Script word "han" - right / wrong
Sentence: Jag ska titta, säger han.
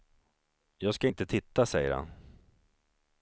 right